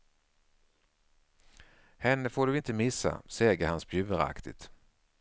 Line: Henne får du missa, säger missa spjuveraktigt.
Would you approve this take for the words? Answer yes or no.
no